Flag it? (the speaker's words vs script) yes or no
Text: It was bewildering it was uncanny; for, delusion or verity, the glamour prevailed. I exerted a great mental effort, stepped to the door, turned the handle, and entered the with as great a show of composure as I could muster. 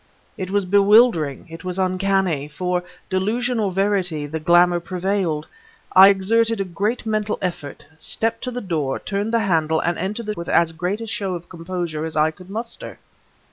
no